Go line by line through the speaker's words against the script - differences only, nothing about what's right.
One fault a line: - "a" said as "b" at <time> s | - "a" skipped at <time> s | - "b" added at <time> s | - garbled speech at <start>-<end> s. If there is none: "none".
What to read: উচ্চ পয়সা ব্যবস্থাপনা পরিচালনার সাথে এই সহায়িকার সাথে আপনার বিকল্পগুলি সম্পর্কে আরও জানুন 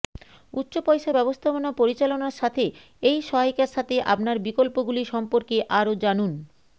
none